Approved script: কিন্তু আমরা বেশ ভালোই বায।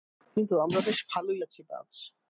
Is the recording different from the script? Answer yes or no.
yes